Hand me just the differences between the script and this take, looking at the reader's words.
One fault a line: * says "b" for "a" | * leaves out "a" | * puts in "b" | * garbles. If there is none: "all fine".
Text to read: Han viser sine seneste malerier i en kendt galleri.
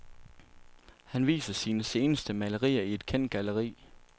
* says "et" for "en"